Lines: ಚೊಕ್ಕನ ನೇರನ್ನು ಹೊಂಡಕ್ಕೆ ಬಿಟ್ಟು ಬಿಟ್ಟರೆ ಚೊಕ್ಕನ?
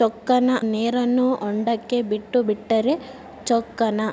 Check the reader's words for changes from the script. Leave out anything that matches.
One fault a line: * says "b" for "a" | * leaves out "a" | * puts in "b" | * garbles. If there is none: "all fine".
all fine